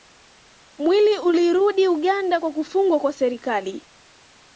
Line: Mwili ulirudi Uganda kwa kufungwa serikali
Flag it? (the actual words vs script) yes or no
yes